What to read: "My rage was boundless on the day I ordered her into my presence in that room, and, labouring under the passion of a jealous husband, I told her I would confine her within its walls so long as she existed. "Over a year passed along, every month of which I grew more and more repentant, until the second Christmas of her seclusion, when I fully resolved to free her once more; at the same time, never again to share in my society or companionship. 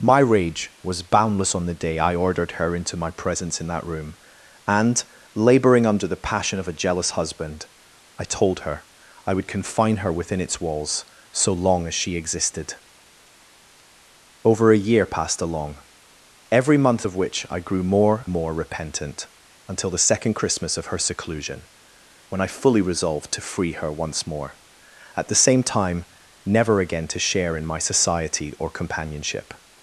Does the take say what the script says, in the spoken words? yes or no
no